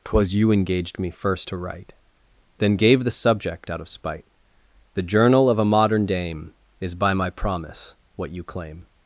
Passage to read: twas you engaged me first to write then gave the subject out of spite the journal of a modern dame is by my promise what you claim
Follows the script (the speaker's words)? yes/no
yes